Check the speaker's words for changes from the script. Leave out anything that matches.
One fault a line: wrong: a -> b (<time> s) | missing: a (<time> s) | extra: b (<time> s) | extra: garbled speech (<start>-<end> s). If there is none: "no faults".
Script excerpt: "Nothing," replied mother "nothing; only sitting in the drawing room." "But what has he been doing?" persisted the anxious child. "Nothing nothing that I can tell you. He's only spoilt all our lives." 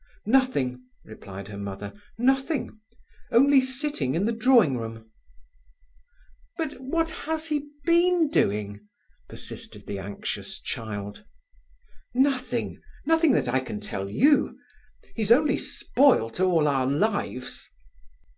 extra: her (1.5 s)